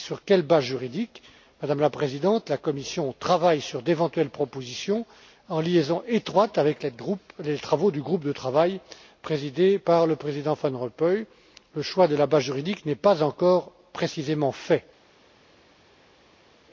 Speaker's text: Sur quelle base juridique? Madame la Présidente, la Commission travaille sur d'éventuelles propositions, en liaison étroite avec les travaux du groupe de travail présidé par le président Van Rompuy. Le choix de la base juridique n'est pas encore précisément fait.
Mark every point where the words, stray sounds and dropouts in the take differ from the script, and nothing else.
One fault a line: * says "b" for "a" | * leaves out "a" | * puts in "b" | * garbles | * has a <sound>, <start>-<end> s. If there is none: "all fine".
all fine